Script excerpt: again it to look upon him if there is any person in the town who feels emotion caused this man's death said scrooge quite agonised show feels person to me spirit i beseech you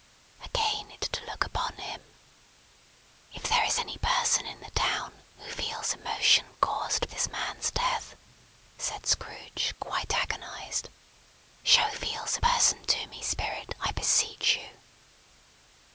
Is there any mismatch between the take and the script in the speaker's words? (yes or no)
no